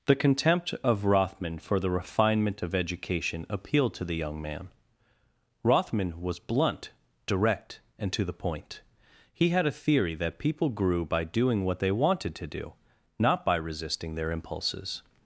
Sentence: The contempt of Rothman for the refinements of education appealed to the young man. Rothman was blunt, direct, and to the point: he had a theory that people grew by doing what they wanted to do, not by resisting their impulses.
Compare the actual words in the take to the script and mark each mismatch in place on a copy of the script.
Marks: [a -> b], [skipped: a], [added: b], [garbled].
The contempt of Rothman for the [refinements -> refinement] of education appealed to the young man. Rothman was blunt, direct, and to the point: he had a theory that people grew by doing what they wanted to do, not by resisting their impulses.